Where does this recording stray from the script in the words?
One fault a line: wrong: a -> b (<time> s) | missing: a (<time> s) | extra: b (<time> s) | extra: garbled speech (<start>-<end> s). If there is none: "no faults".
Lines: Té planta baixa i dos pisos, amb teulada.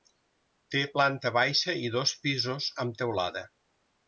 no faults